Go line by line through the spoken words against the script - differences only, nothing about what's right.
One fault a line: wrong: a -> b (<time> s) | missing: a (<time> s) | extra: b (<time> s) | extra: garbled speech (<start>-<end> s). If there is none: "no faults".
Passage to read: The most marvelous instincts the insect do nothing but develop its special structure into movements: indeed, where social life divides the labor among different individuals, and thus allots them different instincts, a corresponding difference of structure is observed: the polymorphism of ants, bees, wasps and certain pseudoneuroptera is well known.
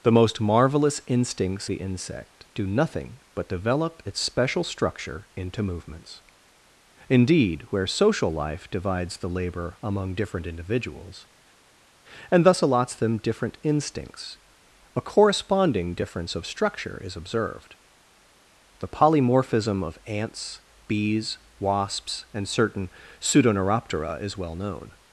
no faults